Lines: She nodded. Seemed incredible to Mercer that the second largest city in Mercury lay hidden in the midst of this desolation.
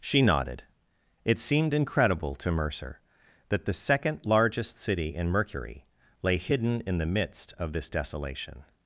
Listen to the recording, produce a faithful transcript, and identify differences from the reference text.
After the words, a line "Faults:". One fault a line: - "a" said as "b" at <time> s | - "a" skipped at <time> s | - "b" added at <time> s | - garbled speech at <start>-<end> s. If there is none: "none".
She nodded. It seemed incredible to Mercer that the second largest city in Mercury lay hidden in the midst of this desolation.
Faults:
- "It" added at 1.2 s